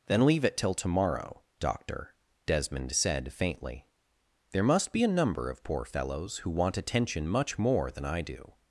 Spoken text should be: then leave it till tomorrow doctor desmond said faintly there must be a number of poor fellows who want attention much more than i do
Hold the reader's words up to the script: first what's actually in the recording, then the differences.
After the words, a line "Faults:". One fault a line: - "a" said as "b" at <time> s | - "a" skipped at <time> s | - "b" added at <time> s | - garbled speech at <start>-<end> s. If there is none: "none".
then leave it till tomorrow doctor desmond said faintly there must be a number of poor fellows who want attention much more than i do
Faults:
none